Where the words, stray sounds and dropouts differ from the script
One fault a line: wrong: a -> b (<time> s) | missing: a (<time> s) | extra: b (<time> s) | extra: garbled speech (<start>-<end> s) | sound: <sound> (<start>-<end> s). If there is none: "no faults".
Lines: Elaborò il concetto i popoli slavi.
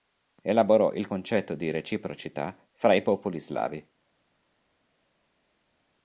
extra: di reciprocità fra (1.5 s)